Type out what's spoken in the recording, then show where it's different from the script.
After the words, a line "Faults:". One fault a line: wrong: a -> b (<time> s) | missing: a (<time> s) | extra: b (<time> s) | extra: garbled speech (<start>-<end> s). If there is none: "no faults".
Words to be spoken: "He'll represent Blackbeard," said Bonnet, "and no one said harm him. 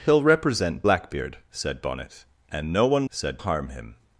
"He'll represent Blackbeard," said Bonnet, "and no one said harm him.
Faults:
no faults